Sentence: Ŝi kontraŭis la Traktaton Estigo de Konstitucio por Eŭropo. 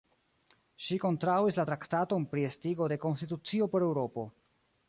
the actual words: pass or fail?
fail